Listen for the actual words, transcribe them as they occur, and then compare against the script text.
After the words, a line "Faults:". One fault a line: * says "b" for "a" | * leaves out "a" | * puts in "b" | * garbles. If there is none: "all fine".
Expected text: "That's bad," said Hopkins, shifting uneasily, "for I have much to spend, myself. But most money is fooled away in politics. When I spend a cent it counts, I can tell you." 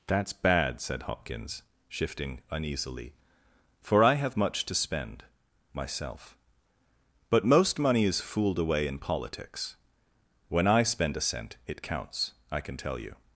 "That's bad," said Hopkins, shifting uneasily, "for I have much to spend, myself. But most money is fooled away in politics. When I spend a cent it counts, I can tell you."
Faults:
all fine